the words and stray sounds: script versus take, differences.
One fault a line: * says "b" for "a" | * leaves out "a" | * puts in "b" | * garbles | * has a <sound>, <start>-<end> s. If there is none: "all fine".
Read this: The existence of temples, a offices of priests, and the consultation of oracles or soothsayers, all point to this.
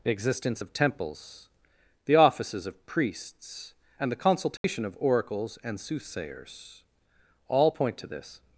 * says "the" for "a"
* has a dropout, 4.6-4.6 s
* says "and" for "or"